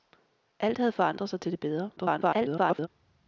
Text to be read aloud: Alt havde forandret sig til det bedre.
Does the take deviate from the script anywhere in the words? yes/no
yes